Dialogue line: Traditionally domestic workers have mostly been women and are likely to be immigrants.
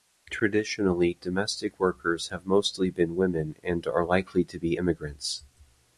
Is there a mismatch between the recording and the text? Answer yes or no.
no